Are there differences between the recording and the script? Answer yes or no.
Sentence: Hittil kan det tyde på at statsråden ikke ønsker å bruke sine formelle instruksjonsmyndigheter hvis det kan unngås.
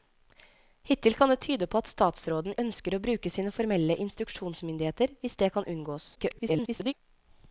yes